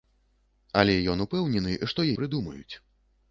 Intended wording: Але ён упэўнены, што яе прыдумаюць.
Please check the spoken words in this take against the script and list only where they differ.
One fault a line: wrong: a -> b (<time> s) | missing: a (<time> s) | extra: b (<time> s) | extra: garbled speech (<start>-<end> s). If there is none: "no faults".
missing: яе (2.1 s)